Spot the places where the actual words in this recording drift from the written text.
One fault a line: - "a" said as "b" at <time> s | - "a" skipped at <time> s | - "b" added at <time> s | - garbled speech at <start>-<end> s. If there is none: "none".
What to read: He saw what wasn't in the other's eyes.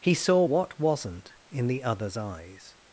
none